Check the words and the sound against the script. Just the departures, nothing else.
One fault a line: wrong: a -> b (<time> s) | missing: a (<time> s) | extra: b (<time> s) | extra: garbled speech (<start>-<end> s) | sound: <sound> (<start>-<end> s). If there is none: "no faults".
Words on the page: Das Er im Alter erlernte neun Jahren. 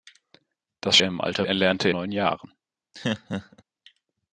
sound: laugh (2.9-3.6 s)